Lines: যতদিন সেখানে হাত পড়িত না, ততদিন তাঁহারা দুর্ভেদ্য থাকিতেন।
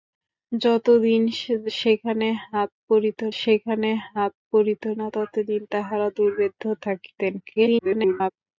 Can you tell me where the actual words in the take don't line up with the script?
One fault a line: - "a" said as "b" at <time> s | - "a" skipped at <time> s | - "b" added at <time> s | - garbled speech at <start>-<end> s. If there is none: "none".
- "সেখানে হাত পড়িত" added at 3.4 s
- garbled speech at 7.4-8.3 s